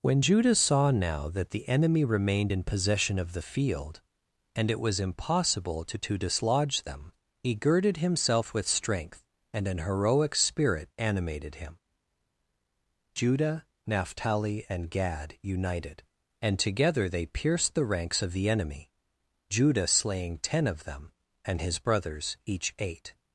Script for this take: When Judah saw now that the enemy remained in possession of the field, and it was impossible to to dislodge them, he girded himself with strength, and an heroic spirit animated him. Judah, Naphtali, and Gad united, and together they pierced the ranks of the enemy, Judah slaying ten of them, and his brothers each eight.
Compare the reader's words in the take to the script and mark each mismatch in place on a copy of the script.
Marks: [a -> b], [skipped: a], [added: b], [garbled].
When Judah saw now that the enemy remained in possession of the field, and it was impossible to to dislodge them, he girded himself with strength, and an heroic spirit animated him. Judah, Naphtali, and Gad united, and together they pierced the ranks of the enemy, Judah slaying ten of them, and his brothers each eight.